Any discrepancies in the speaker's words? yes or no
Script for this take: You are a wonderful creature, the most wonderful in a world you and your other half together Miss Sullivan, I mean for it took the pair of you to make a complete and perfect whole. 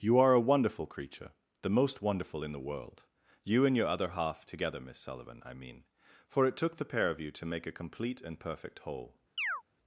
yes